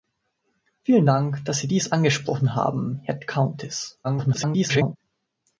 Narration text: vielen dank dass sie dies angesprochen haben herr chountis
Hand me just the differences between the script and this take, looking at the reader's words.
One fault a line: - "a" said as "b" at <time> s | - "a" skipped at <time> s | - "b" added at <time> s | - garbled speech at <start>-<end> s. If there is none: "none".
- garbled speech at 4.0-5.0 s